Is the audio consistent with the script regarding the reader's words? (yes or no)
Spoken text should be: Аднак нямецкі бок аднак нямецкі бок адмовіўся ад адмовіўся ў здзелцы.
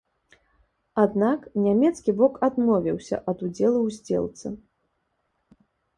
no